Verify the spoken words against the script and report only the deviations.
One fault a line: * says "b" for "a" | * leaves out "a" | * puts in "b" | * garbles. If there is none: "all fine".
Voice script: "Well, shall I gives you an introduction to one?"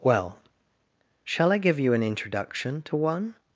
* says "give" for "gives"